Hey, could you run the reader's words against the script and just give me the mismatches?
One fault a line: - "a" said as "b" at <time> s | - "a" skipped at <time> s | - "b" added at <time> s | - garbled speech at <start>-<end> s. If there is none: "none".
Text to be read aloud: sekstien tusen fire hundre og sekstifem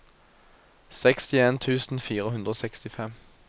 none